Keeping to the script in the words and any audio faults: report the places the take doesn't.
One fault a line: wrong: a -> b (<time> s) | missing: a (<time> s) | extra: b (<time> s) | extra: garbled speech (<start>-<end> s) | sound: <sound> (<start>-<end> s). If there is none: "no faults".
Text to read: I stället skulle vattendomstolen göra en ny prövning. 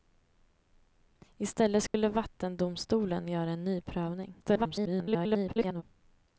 sound: dropout (1.9-1.9 s)
extra: garbled speech (4.4-5.8 s)